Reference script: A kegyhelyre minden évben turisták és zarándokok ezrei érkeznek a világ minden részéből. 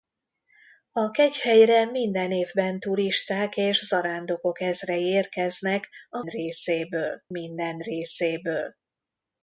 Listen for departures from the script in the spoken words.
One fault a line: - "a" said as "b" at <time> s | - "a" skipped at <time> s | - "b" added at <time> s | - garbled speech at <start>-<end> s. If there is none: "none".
- "világ" said as "részéből" at 6.2 s